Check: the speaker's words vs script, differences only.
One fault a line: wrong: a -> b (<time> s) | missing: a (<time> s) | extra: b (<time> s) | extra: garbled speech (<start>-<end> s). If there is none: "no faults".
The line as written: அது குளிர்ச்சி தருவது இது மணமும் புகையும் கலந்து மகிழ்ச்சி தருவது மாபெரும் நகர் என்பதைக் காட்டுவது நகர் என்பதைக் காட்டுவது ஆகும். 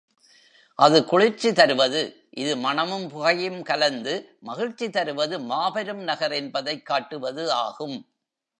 missing: நகர் என்பதைக் காட்டுவது (7.5 s)